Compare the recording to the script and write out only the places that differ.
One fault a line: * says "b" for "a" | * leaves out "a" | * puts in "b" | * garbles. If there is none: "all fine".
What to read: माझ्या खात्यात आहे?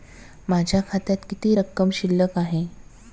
* puts in "किती रक्कम शिल्लक"